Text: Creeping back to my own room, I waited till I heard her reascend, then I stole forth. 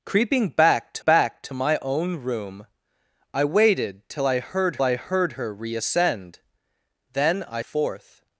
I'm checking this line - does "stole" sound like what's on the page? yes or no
no